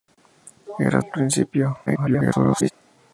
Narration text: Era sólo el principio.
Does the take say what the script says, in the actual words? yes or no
no